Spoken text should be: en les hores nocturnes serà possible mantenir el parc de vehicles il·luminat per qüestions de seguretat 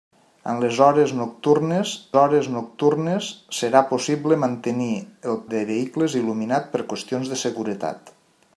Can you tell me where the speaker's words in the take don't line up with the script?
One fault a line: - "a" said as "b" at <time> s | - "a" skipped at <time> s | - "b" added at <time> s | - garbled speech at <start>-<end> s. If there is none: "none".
- "hores nocturnes" added at 2.2 s
- "parc" skipped at 5.4 s